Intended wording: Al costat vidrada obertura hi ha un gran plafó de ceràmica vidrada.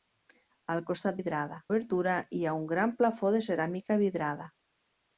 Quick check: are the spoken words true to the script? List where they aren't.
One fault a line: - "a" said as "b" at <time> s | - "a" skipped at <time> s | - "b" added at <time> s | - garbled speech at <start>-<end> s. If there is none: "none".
none